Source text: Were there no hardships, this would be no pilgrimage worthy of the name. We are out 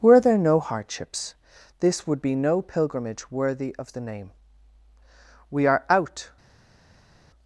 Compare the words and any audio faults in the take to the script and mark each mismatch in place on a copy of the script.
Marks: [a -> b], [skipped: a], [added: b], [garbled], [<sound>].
Were there no hardships, this would be no pilgrimage worthy of the name. We are out